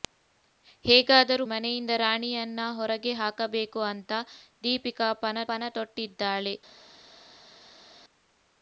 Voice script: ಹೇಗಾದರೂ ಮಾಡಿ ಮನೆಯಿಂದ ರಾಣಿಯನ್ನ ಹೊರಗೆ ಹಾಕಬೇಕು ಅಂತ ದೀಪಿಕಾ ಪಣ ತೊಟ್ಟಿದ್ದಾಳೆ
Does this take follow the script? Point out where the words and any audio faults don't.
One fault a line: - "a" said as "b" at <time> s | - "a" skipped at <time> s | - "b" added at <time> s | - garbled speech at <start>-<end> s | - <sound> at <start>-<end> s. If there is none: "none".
- "ಮಾಡಿ" skipped at 1.4 s
- "ಪಣ" added at 5.5 s